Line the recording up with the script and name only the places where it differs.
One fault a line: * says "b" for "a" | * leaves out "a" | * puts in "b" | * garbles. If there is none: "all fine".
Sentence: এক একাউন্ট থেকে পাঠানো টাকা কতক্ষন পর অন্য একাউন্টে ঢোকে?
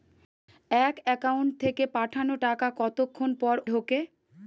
* leaves out "অন্য একাউন্টে"